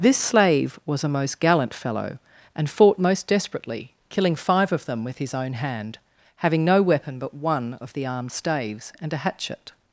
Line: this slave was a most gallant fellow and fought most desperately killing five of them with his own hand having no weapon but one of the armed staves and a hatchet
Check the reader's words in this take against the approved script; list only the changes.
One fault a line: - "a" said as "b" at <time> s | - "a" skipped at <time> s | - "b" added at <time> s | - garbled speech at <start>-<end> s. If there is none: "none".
none